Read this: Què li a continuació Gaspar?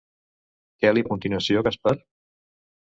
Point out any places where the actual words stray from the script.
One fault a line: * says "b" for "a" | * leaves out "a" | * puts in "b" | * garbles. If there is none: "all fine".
all fine